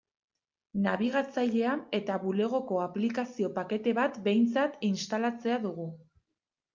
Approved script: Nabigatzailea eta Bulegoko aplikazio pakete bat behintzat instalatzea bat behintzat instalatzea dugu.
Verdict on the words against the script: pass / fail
fail